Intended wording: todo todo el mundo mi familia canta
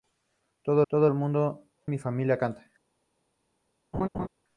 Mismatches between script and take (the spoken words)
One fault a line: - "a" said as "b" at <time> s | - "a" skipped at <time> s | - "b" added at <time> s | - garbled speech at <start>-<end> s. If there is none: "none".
none